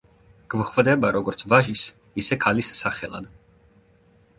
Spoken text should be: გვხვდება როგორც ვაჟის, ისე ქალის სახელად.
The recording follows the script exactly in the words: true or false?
true